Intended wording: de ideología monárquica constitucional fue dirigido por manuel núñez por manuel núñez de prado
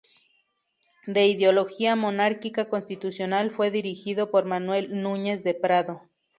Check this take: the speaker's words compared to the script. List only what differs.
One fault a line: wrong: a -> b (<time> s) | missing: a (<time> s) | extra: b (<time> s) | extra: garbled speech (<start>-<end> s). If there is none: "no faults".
missing: por manuel núñez (5.4 s)